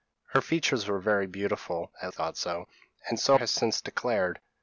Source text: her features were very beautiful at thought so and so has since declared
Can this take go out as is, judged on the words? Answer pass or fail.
pass